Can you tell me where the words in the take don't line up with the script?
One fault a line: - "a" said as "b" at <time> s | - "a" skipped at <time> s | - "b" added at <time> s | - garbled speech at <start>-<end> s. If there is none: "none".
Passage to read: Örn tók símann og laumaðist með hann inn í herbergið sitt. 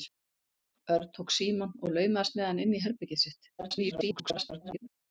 - garbled speech at 3.6-4.9 s